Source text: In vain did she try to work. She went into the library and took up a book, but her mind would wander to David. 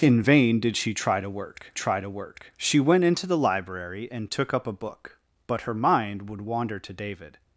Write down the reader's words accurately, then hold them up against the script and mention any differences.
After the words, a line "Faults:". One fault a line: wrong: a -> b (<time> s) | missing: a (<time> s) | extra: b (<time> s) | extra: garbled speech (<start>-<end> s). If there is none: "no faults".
In vain did she try to work try to work. She went into the library and took up a book, but her mind would wander to David.
Faults:
extra: try to work (1.7 s)